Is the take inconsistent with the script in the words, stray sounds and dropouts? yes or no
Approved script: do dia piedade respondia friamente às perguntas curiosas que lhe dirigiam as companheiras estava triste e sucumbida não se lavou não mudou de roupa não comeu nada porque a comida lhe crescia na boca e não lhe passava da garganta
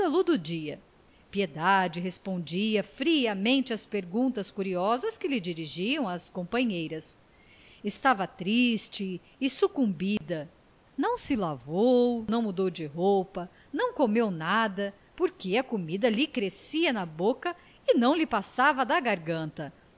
yes